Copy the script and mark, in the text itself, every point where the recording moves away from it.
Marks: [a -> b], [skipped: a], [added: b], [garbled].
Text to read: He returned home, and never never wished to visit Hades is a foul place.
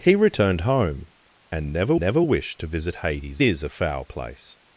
He returned home, and never never wished to visit Hades is a foul place.